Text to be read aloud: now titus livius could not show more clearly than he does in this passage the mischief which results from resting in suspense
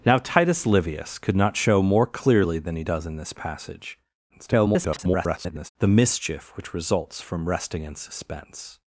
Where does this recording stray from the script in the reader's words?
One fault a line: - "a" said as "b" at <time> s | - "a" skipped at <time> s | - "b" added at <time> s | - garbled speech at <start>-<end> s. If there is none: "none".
- garbled speech at 4.3-5.7 s